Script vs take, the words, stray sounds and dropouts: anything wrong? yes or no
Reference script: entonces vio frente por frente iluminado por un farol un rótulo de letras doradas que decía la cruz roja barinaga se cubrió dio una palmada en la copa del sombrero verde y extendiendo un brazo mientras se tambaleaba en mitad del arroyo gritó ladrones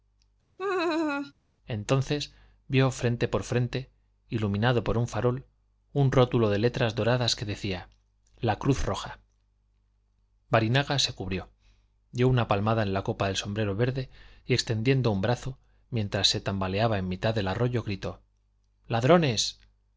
yes